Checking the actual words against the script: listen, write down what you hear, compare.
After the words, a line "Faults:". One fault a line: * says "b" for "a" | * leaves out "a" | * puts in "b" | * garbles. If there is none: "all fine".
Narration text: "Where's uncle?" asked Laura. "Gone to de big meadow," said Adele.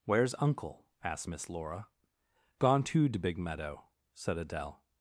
"Where's uncle?" asked Miss Laura. "Gone to de big meadow," said Adele.
Faults:
* puts in "Miss"